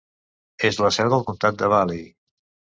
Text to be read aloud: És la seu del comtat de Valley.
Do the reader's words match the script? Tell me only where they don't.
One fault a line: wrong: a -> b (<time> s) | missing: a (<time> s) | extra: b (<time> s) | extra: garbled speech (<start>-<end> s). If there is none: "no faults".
no faults